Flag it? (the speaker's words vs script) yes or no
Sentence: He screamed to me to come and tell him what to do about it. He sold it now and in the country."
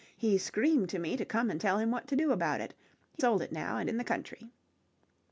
no